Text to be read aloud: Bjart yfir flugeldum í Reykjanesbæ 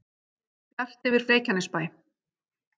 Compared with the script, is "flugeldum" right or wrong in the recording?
wrong